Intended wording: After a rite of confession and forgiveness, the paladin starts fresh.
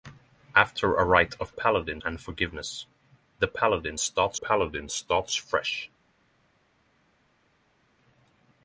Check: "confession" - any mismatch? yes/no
yes